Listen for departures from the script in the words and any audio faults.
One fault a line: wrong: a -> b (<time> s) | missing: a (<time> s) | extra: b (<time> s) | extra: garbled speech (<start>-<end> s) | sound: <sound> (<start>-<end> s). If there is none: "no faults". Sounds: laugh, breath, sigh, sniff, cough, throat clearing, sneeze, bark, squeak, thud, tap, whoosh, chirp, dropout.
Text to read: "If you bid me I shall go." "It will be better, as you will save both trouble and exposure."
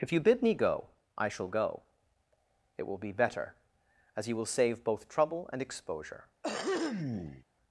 extra: go (0.6 s)
sound: throat clearing (6.4-7.4 s)